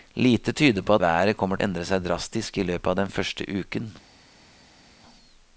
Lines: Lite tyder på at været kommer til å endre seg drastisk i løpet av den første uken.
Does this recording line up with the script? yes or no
no